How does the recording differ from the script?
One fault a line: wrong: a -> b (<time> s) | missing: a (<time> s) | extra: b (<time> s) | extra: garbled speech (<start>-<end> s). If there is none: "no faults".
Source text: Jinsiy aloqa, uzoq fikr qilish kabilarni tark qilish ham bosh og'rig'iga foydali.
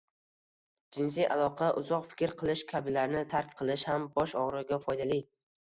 no faults